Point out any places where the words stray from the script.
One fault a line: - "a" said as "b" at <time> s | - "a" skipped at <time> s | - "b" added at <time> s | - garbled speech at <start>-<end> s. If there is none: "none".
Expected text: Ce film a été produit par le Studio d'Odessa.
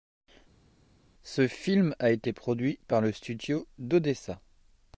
none